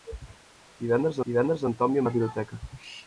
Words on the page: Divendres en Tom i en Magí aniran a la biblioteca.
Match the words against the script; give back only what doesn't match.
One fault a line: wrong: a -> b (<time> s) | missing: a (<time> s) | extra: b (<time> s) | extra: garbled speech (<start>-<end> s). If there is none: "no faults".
extra: divendres (1.3 s)
missing: Magí aniran (2.1 s)